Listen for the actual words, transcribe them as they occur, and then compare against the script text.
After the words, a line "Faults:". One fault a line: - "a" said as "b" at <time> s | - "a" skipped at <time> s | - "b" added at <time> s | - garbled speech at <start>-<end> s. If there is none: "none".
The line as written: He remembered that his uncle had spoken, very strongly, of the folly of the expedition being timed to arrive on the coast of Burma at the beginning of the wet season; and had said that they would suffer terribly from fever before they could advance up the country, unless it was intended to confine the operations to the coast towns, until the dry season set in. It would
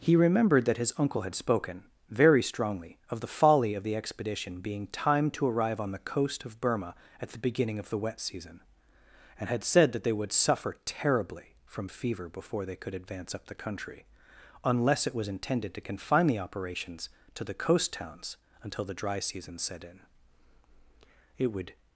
He remembered that his uncle had spoken, very strongly, of the folly of the expedition being timed to arrive on the coast of Burma at the beginning of the wet season; and had said that they would suffer terribly from fever before they could advance up the country, unless it was intended to confine the operations to the coast towns, until the dry season set in. It would
Faults:
none